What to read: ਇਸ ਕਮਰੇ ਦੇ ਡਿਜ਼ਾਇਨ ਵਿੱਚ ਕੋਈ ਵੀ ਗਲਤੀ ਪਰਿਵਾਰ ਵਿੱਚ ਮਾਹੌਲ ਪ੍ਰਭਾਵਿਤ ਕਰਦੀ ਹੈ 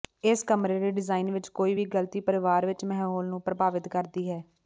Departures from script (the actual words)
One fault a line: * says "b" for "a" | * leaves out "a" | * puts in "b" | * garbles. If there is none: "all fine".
* puts in "ਨੂੰ"